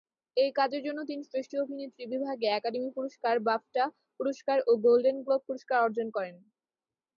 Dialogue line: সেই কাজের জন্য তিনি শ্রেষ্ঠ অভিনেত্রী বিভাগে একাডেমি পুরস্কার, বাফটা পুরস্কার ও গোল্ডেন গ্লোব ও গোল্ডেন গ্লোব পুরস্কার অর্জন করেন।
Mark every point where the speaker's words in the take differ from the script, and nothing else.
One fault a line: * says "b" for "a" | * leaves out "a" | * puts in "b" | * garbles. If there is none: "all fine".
* says "এই" for "সেই"
* leaves out "ও গোল্ডেন গ্লোব"